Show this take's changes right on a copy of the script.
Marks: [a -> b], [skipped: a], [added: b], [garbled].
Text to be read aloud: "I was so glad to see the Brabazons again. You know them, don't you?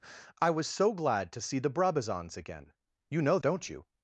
"I was so glad to see the Brabazons again. You know [skipped: them,] don't you?